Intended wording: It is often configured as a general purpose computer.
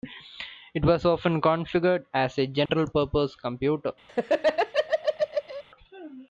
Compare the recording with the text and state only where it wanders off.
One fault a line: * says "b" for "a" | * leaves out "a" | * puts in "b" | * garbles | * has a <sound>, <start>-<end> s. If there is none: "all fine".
* says "was" for "is"
* has a dropout, 2.7-2.7 s
* has a laugh, 4.1-5.6 s